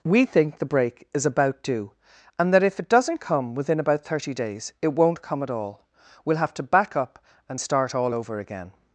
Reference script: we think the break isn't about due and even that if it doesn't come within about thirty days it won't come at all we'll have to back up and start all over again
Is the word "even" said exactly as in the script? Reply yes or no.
no